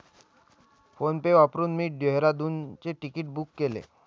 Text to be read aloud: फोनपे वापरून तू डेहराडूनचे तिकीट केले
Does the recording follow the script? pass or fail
fail